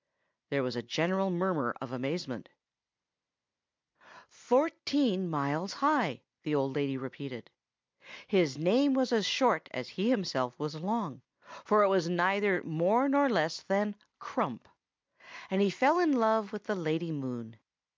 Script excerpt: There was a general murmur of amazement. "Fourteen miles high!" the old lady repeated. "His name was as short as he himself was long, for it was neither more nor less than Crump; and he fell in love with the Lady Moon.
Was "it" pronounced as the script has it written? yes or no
yes